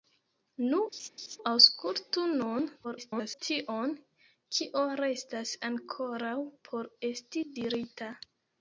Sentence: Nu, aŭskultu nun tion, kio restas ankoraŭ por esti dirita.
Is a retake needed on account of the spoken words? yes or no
yes